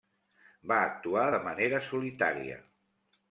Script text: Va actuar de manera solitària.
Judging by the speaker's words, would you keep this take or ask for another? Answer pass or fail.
pass